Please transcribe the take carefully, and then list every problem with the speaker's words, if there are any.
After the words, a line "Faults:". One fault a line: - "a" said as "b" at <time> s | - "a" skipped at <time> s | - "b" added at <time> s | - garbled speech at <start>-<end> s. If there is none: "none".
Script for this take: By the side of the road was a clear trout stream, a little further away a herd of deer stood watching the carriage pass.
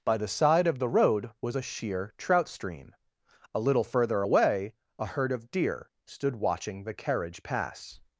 By the side of the road was a sheer trout stream, a little further away a herd of deer stood watching the carriage pass.
Faults:
- "clear" said as "sheer" at 1.6 s